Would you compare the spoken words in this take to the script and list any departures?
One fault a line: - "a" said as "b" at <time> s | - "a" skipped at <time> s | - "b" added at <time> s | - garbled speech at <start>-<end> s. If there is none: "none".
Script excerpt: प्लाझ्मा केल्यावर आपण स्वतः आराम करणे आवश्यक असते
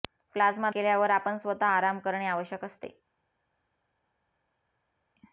none